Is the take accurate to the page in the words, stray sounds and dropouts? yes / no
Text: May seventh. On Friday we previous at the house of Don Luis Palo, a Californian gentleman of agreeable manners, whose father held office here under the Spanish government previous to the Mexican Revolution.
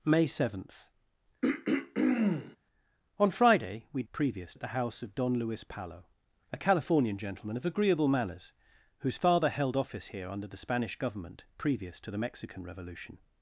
no